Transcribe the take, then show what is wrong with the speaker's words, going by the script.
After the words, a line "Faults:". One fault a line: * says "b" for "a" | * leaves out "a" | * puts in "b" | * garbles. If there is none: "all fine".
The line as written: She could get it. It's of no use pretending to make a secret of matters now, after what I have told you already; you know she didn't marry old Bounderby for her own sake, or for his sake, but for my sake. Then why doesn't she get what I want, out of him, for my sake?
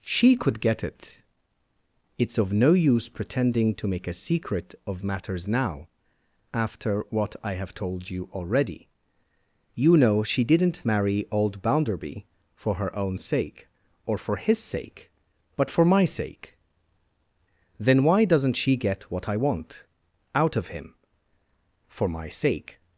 She could get it. It's of no use pretending to make a secret of matters now, after what I have told you already; you know she didn't marry old Bounderby for her own sake, or for his sake, but for my sake. Then why doesn't she get what I want, out of him, for my sake?
Faults:
all fine